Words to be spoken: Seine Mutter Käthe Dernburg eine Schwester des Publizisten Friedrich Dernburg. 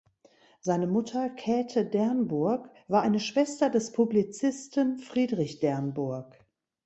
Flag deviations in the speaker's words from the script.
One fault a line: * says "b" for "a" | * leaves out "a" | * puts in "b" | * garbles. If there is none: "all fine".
* puts in "war"